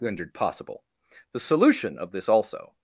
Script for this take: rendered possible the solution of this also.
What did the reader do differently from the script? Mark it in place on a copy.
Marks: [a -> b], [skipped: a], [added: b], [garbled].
rendered possible the solution of this also.